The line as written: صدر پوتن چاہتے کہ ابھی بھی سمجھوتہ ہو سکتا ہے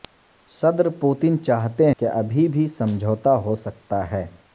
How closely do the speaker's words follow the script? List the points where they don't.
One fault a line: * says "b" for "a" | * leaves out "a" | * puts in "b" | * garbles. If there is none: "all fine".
all fine